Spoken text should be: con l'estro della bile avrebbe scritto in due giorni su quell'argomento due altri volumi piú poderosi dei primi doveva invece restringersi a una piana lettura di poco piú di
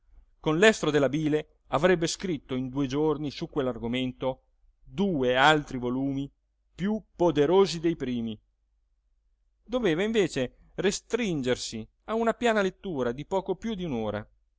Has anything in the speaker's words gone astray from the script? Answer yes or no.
no